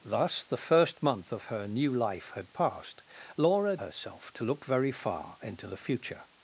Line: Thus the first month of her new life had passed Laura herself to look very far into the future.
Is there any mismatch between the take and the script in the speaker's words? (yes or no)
no